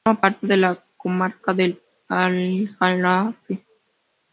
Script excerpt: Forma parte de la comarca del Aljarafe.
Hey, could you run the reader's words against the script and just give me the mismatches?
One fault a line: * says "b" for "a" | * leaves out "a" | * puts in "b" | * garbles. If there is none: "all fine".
all fine